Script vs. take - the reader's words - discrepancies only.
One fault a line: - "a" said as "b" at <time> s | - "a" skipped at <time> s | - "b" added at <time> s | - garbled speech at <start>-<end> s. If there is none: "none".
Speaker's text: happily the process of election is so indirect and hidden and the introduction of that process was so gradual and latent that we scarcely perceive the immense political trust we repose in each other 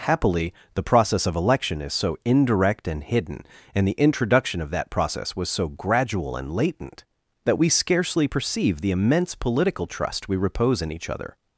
none